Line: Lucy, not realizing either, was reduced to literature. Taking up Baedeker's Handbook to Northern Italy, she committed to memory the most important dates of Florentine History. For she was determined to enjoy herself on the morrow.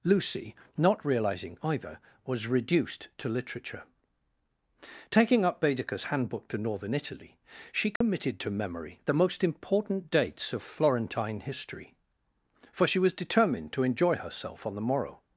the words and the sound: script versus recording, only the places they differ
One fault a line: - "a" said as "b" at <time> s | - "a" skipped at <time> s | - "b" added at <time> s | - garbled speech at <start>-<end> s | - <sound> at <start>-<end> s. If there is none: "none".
- dropout at 8.0-8.0 s